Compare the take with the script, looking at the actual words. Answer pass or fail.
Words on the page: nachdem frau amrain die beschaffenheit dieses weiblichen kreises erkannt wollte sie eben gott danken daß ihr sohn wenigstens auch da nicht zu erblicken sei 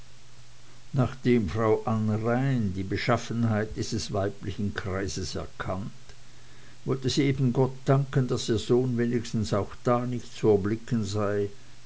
pass